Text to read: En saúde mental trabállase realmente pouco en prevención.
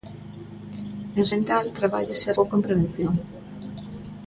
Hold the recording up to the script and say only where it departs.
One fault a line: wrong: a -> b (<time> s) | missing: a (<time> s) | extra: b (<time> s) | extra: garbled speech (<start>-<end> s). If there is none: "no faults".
missing: saúde (1.2 s)
missing: realmente (2.3 s)